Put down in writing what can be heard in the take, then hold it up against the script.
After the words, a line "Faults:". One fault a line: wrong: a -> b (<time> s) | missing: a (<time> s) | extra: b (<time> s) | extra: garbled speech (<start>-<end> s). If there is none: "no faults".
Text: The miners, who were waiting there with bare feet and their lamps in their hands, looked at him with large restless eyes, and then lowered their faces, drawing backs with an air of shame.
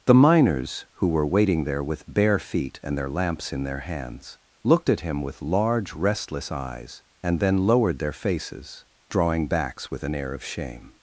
The miners, who were waiting there with bare feet and their lamps in their hands, looked at him with large restless eyes, and then lowered their faces, drawing backs with an air of shame.
Faults:
no faults